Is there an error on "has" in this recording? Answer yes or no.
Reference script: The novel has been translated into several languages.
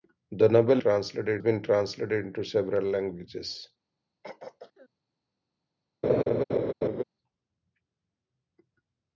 yes